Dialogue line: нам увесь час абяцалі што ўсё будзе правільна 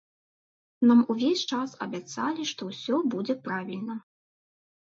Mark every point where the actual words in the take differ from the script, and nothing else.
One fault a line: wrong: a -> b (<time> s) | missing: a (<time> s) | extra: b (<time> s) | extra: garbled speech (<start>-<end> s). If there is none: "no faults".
no faults